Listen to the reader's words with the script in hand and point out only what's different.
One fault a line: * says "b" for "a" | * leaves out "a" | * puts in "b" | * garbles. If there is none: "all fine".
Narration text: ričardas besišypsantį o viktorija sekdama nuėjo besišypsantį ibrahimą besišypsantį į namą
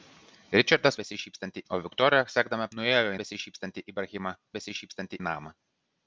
all fine